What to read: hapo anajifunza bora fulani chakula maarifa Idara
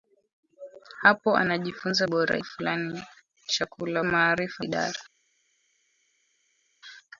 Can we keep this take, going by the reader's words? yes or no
yes